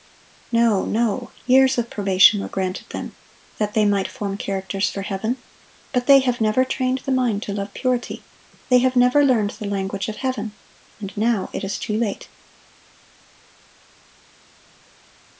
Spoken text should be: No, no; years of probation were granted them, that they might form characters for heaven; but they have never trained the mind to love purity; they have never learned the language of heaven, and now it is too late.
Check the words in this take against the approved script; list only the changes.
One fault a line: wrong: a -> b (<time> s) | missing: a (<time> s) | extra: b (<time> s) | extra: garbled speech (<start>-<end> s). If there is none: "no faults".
no faults